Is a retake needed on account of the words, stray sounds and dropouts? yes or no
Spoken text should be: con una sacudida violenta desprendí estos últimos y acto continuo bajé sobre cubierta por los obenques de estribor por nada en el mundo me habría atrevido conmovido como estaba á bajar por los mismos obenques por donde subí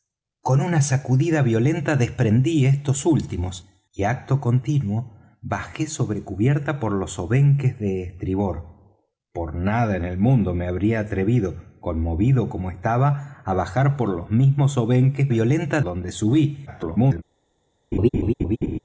yes